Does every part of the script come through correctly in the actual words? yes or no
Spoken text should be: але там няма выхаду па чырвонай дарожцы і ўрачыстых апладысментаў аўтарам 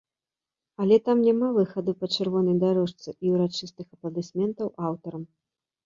yes